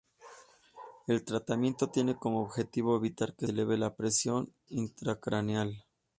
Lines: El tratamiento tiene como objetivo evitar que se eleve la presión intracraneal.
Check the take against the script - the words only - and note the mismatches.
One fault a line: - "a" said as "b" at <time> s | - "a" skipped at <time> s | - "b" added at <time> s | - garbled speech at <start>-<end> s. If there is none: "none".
- "se" skipped at 3.5 s